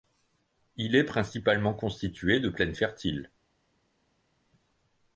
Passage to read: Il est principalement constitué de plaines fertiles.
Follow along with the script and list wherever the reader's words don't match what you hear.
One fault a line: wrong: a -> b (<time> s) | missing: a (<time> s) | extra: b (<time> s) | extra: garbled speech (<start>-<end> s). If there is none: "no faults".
no faults